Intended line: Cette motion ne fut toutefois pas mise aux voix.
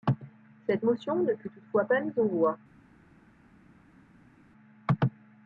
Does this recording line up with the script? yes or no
yes